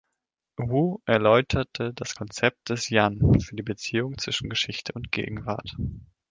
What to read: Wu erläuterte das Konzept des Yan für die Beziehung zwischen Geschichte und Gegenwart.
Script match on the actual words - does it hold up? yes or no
yes